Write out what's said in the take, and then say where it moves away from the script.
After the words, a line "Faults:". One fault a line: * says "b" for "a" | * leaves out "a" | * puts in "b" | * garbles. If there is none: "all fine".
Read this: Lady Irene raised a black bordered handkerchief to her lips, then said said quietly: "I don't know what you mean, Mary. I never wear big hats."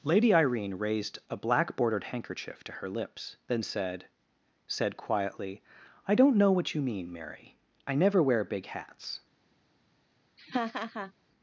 Lady Irene raised a black bordered handkerchief to her lips, then said said quietly: "I don't know what you mean, Mary. I never wear big hats."
Faults:
all fine